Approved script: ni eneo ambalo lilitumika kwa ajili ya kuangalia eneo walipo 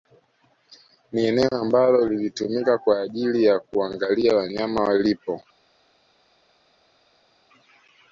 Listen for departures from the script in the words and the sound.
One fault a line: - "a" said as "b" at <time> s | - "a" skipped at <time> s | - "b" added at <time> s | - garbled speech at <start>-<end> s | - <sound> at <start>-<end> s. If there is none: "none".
- "eneo" said as "wanyama" at 4.4 s